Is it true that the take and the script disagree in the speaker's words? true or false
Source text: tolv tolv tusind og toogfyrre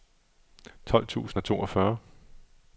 true